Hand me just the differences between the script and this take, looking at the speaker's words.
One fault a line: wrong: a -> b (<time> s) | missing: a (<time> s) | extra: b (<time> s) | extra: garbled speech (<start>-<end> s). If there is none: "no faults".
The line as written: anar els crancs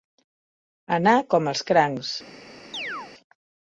extra: com (1.4 s)